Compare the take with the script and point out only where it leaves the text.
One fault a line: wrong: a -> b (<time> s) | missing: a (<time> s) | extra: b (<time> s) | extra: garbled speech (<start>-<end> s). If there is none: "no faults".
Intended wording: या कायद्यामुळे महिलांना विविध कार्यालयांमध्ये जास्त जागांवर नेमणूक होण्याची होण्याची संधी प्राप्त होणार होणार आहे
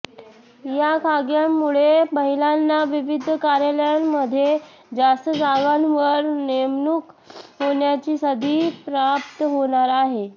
missing: होण्याची (8.2 s)
missing: होणार (9.9 s)